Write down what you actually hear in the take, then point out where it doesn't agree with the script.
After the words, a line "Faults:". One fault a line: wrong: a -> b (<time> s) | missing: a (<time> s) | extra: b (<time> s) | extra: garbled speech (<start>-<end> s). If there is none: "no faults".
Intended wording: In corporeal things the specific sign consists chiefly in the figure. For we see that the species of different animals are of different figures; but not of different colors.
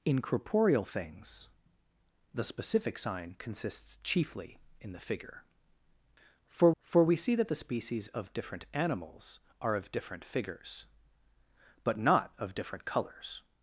In corporeal things the specific sign consists chiefly in the figure. For for we see that the species of different animals are of different figures; but not of different colors.
Faults:
extra: for (6.8 s)